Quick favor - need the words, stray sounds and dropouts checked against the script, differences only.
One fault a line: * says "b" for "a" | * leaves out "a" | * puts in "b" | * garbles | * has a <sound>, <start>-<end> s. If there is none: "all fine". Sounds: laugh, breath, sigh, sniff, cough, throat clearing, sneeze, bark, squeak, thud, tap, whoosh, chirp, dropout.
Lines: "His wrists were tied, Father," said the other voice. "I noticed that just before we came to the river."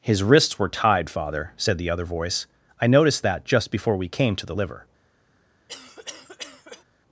* says "liver" for "river"
* has a cough, 5.7-6.8 s